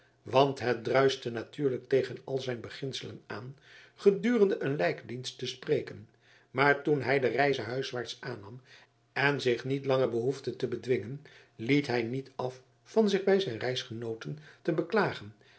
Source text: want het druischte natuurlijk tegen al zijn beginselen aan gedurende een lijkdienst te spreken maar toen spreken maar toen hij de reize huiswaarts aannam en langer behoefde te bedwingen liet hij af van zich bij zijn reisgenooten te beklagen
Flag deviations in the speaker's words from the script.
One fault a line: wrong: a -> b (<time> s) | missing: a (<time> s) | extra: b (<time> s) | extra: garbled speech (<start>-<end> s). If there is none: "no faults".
missing: spreken maar toen (7.0 s)
extra: zich niet (9.4 s)
extra: niet (12.0 s)